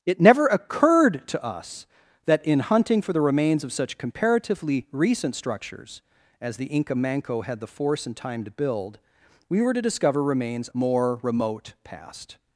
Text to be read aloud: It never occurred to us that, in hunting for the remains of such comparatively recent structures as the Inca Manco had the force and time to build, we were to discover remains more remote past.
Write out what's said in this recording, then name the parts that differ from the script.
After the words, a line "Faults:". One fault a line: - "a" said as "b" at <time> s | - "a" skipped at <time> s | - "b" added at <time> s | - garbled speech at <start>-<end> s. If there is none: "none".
It never occurred to us that, in hunting for the remains of such comparatively recent structures as the Inca Manco had the force and time to build, we were to discover remains more remote past.
Faults:
none